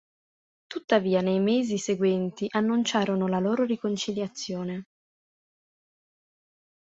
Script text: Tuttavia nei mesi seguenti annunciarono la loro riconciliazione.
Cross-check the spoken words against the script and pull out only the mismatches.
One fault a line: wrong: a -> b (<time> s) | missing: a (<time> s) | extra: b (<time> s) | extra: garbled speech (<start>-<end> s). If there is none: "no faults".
no faults